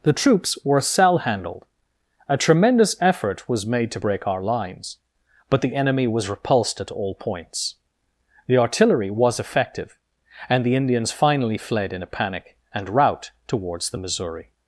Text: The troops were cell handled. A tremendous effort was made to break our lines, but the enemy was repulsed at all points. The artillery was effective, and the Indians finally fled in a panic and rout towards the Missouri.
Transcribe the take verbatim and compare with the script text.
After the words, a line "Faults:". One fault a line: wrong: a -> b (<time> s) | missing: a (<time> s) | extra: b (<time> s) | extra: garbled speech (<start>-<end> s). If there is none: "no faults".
The troops were cell handled. A tremendous effort was made to break our lines, but the enemy was repulsed at all points. The artillery was effective, and the Indians finally fled in a panic and rout towards the Missouri.
Faults:
no faults